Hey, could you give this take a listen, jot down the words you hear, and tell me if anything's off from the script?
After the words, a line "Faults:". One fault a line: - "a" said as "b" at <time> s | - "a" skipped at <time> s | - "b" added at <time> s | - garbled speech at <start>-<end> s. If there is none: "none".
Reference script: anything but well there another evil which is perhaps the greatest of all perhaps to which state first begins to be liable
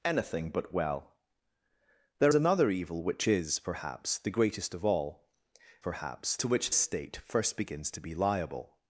anything but well there another evil which is perhaps the greatest of all perhaps to which state first begins to be liable
Faults:
none